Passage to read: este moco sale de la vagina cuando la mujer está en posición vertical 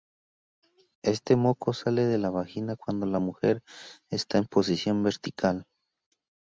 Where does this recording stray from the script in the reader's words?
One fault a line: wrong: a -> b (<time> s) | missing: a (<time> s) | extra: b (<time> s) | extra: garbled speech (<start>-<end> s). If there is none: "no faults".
no faults